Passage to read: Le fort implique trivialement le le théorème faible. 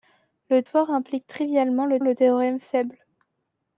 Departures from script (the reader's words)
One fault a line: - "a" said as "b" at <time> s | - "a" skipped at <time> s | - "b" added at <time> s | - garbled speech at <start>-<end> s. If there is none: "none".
none